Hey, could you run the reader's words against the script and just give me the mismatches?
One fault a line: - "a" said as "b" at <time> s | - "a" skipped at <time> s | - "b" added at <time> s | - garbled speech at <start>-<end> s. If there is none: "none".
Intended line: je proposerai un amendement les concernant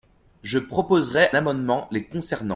- "un" skipped at 1.3 s